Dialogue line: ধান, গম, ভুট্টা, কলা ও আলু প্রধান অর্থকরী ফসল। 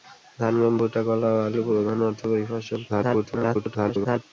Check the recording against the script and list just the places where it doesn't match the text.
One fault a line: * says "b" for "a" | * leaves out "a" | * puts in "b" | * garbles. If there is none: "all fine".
* garbles